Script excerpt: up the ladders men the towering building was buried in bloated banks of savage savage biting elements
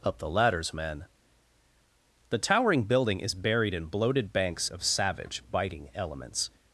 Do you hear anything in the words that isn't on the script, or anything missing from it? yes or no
yes